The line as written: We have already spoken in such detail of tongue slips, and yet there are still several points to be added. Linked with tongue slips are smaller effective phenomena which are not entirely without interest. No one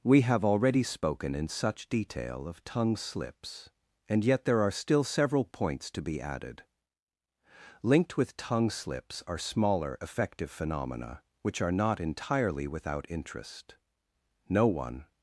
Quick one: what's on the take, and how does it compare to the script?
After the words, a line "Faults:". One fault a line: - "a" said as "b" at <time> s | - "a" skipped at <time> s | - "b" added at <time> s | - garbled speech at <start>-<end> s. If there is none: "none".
We have already spoken in such detail of tongue slips, and yet there are still several points to be added. Linked with tongue slips are smaller effective phenomena which are not entirely without interest. No one
Faults:
none